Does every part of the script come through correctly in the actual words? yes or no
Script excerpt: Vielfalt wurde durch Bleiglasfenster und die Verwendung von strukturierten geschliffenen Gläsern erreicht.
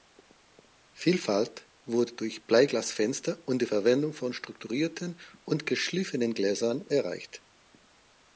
no